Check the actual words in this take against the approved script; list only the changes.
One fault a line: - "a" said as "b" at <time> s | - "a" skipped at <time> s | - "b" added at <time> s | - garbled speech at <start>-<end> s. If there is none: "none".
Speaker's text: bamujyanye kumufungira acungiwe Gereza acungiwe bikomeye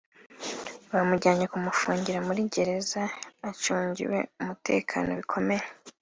- "acungiwe" said as "muri" at 2.3 s
- "umutekano" added at 4.4 s